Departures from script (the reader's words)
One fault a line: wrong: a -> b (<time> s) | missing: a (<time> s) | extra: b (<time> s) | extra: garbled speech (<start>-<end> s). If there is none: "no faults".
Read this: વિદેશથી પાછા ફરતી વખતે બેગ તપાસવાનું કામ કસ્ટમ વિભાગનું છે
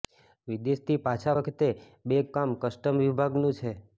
missing: ફરતી (1.4 s)
missing: તપાસવાનું (2.3 s)